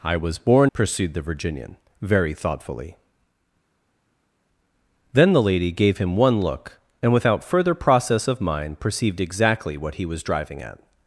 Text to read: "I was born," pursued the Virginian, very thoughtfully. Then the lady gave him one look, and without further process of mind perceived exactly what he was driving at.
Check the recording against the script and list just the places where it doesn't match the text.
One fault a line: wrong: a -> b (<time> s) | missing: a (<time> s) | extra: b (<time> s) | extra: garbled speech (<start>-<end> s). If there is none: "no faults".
no faults